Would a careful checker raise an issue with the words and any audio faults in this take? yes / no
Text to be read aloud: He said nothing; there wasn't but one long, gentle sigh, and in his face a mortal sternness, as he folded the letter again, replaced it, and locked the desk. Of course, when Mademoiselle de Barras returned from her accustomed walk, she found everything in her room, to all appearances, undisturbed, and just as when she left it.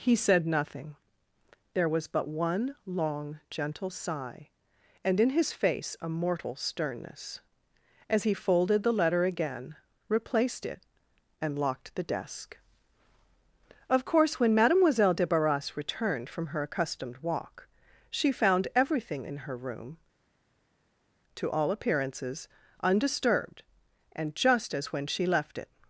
yes